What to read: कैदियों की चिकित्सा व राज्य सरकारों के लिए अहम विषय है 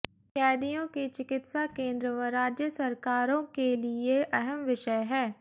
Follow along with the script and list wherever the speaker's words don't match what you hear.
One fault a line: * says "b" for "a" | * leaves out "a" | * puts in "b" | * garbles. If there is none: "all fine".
* puts in "केंद्र"